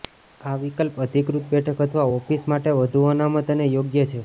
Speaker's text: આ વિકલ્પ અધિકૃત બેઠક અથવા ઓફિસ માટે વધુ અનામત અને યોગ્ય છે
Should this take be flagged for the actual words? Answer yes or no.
no